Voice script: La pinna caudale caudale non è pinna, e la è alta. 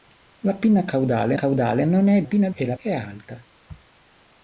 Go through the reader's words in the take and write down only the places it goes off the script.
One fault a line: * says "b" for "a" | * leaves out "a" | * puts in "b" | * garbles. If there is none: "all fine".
all fine